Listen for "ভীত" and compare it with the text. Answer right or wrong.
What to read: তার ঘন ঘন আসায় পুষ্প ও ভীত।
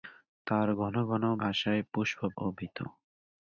right